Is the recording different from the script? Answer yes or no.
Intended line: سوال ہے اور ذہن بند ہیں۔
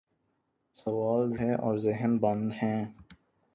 no